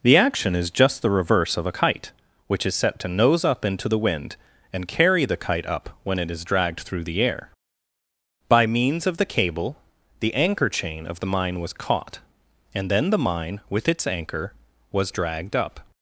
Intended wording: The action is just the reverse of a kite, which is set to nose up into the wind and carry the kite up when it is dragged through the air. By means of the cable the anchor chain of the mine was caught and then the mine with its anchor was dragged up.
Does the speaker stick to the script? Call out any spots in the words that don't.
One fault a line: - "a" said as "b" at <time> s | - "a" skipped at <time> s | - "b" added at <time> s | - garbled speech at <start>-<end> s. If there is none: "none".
none